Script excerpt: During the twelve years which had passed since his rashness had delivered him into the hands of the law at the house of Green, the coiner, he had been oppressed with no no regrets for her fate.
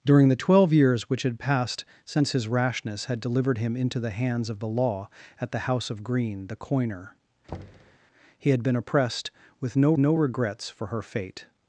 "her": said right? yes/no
yes